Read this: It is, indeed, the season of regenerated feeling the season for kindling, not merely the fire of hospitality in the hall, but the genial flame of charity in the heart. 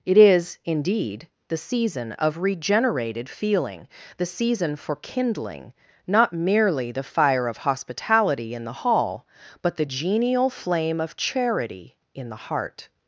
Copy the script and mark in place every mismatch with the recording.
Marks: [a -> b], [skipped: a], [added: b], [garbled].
It is, indeed, the season of regenerated feeling the season for kindling, not merely the fire of hospitality in the hall, but the genial flame of charity in the heart.